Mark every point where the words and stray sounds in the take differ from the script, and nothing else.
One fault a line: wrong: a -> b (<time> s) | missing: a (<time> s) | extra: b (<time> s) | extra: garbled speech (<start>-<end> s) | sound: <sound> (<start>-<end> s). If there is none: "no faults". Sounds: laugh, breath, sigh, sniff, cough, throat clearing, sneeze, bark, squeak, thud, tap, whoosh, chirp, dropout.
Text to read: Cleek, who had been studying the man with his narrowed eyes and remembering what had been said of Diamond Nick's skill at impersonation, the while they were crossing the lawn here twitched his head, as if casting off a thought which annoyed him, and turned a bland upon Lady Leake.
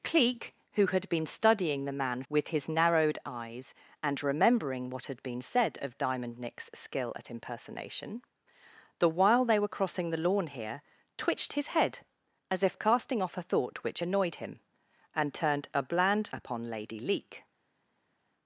no faults